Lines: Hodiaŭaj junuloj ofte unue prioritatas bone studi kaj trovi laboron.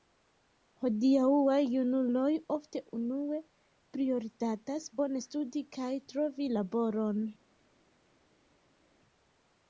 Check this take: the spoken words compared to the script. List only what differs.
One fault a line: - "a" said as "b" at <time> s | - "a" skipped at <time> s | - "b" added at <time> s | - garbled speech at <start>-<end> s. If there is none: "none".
none